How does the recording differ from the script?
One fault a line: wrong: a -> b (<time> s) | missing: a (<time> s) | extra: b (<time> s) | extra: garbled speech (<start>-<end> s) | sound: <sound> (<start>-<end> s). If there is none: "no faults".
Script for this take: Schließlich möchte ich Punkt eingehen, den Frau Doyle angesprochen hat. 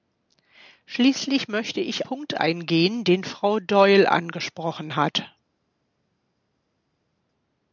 no faults